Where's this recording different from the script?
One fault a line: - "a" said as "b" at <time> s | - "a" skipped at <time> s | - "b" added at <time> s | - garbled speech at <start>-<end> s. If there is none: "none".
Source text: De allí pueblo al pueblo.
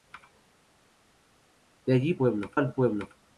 none